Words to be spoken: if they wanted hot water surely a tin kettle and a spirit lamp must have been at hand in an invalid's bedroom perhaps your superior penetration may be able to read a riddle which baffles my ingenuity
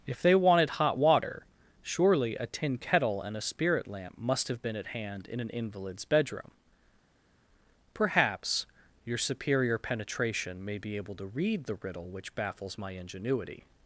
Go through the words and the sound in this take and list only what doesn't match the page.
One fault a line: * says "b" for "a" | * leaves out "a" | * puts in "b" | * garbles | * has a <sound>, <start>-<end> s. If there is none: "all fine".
* says "the" for "a"